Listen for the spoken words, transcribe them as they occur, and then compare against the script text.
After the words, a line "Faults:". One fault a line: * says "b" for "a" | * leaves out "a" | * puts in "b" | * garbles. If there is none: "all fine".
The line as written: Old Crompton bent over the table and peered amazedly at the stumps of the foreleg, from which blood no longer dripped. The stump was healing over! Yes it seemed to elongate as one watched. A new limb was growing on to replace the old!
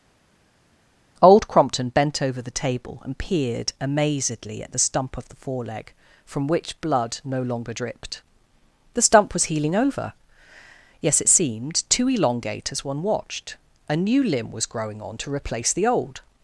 Old Crompton bent over the table and peered amazedly at the stump of the foreleg, from which blood no longer dripped. The stump was healing over! Yes it seemed to elongate as one watched. A new limb was growing on to replace the old!
Faults:
* says "stump" for "stumps"